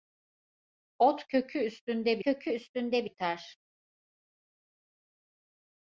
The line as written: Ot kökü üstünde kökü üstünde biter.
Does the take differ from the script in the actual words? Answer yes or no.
no